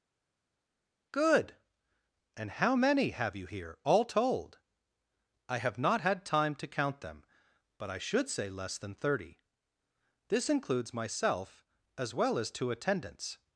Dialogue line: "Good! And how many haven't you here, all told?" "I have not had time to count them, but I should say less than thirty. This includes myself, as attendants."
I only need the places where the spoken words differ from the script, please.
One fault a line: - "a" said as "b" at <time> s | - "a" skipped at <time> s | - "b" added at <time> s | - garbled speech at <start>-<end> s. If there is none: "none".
- "haven't" said as "have" at 3.1 s
- "well as two" added at 12.1 s